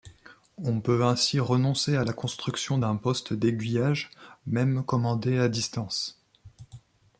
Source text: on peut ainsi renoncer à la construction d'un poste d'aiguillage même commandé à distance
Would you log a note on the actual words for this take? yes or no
no